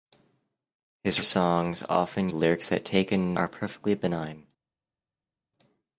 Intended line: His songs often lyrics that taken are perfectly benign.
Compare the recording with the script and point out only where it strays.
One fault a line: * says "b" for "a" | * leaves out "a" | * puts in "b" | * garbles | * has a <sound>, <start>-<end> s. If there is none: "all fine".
all fine